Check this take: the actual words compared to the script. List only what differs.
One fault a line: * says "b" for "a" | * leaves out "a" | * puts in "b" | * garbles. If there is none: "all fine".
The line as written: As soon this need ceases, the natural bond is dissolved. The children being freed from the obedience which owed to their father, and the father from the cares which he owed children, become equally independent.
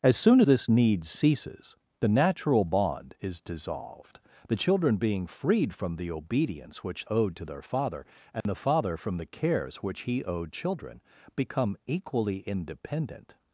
all fine